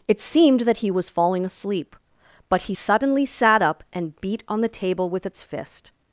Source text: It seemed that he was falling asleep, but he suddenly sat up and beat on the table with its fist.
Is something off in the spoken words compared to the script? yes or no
no